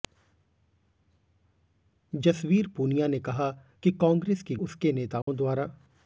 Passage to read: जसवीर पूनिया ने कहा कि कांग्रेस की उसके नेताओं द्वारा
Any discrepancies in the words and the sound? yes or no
yes